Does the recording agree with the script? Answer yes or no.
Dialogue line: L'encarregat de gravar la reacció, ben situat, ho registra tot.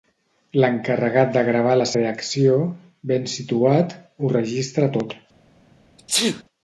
yes